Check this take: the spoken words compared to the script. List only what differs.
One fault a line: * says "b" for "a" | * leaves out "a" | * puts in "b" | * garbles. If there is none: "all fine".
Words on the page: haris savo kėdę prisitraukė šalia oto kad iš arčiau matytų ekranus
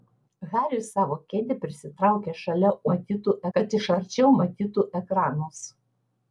* says "matytų" for "oto"